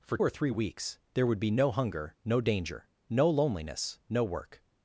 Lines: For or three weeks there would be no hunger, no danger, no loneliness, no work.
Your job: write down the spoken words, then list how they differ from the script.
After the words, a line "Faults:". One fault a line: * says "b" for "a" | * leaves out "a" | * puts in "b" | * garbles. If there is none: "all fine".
For or three weeks there would be no hunger, no danger, no loneliness, no work.
Faults:
all fine